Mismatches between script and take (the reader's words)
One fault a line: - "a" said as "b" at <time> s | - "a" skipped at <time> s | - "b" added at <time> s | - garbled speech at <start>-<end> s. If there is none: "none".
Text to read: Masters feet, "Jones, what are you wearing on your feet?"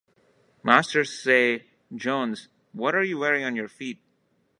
- "feet" said as "say" at 1.2 s